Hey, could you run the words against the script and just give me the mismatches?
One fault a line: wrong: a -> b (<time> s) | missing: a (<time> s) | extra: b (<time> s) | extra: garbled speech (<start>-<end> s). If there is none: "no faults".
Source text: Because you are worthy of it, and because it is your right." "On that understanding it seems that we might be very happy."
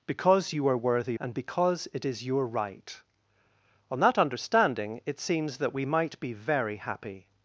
missing: of it (1.2 s)